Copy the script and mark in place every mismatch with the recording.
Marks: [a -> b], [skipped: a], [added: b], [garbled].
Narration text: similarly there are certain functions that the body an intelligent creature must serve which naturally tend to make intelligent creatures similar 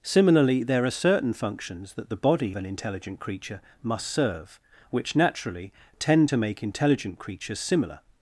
similarly there are certain functions that the body an intelligent creature must serve which naturally tend to make intelligent creatures similar